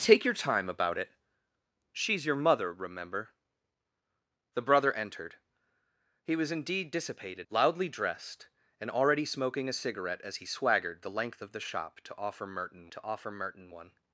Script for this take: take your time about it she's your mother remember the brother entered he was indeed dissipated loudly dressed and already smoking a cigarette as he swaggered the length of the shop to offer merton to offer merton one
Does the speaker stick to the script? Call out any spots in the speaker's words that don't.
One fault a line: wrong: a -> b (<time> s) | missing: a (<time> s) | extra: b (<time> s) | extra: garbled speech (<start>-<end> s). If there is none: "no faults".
no faults